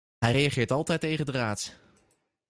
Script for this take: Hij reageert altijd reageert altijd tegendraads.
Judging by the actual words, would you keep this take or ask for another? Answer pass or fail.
fail